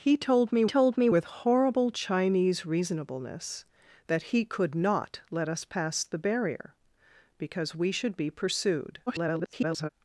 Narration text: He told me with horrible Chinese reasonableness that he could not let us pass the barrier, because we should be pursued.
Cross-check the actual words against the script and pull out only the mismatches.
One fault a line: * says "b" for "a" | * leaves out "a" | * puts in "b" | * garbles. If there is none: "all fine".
* puts in "told me"
* garbles